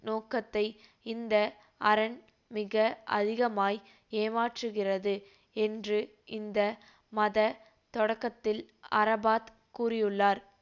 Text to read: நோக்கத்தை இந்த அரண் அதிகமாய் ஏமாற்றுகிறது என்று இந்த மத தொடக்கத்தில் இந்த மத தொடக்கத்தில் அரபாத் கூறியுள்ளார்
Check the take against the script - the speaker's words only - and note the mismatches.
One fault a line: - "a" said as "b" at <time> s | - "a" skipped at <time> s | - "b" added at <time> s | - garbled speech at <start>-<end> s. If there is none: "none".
- "மிக" added at 2.5 s
- "இந்த மத தொடக்கத்தில்" skipped at 8.6 s